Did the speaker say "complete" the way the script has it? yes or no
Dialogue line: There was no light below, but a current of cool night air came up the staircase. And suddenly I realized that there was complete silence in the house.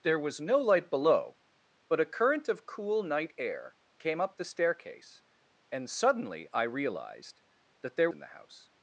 no